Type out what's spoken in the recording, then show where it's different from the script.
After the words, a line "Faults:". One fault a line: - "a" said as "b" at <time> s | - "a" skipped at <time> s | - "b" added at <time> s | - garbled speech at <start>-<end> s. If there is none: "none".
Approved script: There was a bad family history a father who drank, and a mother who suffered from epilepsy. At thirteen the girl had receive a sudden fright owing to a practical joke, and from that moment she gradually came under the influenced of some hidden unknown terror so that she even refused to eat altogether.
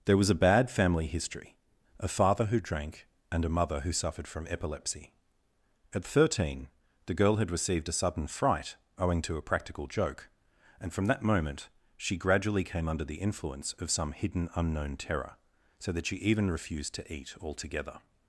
There was a bad family history a father who drank, and a mother who suffered from epilepsy. At thirteen the girl had received a sudden fright owing to a practical joke, and from that moment she gradually came under the influence of some hidden unknown terror so that she even refused to eat altogether.
Faults:
- "receive" said as "received" at 7.5 s
- "influenced" said as "influence" at 13.2 s